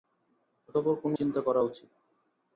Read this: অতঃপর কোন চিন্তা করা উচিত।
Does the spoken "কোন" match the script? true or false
true